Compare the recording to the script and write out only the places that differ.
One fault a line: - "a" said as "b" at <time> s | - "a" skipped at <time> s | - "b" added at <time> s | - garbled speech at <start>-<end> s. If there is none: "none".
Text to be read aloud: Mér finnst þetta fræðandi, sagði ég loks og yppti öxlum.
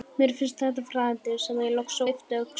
- "og" skipped at 2.0 s